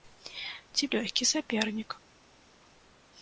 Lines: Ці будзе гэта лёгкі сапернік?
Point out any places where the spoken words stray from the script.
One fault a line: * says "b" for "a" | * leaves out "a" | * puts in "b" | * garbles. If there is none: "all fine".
* leaves out "будзе гэта"